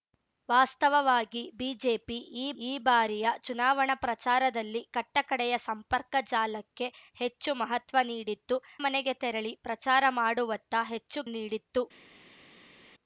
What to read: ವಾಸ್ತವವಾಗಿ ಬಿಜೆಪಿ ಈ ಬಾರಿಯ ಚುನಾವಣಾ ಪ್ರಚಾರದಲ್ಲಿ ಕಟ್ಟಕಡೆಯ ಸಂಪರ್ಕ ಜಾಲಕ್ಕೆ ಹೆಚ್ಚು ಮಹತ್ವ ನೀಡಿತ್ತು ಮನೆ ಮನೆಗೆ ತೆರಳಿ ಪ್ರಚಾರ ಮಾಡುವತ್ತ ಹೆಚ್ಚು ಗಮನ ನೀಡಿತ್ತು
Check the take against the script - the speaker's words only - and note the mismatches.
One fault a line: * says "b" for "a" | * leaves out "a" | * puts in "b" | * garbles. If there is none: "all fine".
* puts in "ಈ"
* leaves out "ಮನೆ"
* leaves out "ಗಮನ"